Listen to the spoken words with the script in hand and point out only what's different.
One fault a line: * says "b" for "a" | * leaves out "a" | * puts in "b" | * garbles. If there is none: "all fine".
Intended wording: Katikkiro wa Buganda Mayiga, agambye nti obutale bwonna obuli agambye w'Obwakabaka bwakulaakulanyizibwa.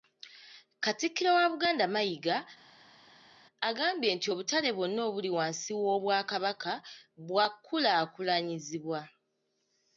* says "wansi" for "agambye"